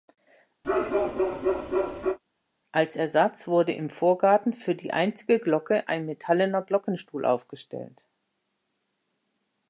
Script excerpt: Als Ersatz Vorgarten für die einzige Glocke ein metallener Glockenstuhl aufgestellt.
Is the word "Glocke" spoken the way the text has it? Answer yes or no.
yes